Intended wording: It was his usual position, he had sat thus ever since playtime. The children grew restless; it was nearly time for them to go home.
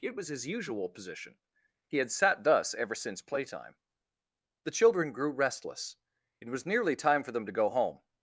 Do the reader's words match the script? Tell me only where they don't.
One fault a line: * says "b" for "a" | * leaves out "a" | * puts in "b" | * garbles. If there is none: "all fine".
all fine